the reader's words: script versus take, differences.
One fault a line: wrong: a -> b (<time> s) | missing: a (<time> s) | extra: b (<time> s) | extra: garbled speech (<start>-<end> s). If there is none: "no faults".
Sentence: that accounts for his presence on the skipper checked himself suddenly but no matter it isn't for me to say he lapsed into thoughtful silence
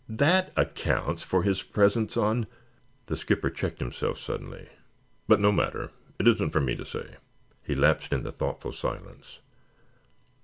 no faults